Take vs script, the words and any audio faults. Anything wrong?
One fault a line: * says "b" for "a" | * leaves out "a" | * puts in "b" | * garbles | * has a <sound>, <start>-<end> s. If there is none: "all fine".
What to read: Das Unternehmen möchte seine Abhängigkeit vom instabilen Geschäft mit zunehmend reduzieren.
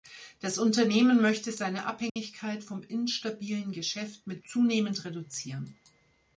* has a dropout, 2.1-2.2 s